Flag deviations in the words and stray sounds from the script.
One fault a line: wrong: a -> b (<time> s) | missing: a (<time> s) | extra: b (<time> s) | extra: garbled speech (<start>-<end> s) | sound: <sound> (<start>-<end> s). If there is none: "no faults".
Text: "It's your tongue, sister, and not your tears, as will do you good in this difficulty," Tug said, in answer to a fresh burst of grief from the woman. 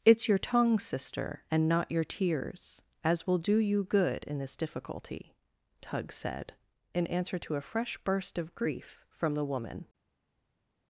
no faults